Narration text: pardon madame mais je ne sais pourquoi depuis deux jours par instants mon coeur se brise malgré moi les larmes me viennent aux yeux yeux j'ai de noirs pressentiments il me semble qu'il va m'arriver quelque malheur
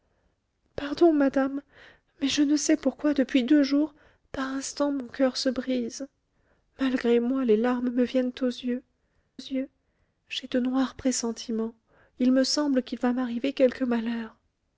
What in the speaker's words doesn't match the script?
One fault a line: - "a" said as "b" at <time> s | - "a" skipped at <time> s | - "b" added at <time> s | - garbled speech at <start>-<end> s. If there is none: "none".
none